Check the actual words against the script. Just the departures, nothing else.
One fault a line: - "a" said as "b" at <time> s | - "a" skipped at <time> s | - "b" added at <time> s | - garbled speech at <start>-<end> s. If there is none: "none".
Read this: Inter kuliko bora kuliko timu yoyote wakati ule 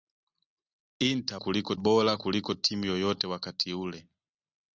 none